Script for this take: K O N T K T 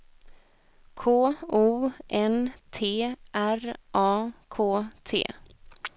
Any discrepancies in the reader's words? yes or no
yes